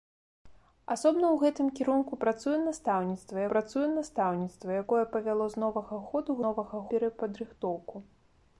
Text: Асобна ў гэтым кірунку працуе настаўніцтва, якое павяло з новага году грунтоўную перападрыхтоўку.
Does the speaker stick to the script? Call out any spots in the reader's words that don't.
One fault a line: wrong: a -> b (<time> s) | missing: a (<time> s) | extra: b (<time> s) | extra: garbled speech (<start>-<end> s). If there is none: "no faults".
extra: працуе настаўніцтва (3.5 s)
wrong: грунтоўную -> новага (6.4 s)